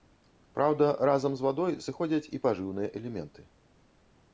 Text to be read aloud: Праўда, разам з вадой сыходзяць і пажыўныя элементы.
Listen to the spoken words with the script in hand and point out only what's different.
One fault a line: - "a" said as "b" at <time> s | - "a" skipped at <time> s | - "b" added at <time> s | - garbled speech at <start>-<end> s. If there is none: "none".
none